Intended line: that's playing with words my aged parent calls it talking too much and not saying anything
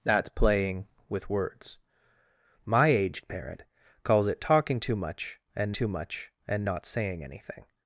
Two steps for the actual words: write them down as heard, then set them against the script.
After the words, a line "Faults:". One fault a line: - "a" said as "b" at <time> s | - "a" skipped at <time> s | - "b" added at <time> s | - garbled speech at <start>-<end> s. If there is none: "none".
that's playing with words my aged parent calls it talking too much and too much and not saying anything
Faults:
- "too much and" added at 5.7 s